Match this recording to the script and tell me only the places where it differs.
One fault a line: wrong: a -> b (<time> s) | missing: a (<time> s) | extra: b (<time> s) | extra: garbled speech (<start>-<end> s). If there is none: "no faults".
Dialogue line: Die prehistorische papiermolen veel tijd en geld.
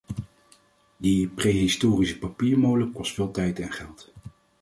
extra: kost (2.9 s)